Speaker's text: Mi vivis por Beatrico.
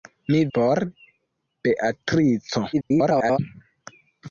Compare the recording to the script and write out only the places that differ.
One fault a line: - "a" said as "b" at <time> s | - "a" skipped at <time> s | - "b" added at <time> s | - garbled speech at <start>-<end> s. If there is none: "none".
- "vivis" skipped at 0.4 s
- garbled speech at 2.7-3.4 s